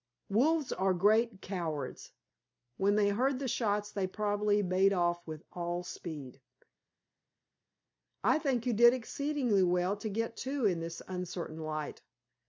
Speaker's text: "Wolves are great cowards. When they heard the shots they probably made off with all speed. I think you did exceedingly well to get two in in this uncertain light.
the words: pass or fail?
fail